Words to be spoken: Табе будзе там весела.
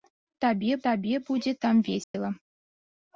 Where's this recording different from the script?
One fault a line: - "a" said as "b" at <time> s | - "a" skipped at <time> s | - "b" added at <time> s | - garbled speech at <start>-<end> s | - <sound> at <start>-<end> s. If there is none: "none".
- "табе" added at 0.9 s
- dropout at 2.0-2.1 s